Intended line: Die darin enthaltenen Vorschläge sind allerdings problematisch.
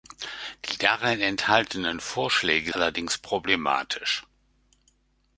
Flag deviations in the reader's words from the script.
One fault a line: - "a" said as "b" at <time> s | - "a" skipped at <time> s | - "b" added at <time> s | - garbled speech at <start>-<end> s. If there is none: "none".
- "sind" skipped at 2.7 s